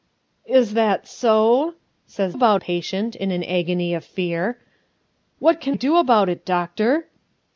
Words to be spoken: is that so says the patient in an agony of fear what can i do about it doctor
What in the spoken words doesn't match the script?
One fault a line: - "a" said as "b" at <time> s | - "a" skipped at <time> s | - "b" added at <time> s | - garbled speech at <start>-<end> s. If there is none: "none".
- "the" said as "about" at 2.3 s
- "i" skipped at 5.7 s